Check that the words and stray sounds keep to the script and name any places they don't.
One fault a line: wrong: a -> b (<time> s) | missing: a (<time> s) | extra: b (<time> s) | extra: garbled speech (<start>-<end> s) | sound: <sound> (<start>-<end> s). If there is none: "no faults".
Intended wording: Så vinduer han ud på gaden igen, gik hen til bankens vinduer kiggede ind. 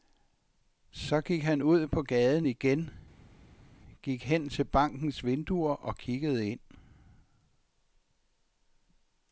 wrong: vinduer -> gik (1.2 s)
extra: og (5.7 s)